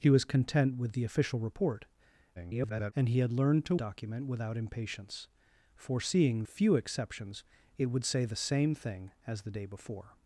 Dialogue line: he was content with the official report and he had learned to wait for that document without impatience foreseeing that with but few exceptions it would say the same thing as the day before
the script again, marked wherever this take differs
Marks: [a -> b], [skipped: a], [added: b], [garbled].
he was content with the official report [garbled] and he had learned to [skipped: wait for that] document without impatience foreseeing [skipped: that with but] few exceptions it would say the same thing as the day before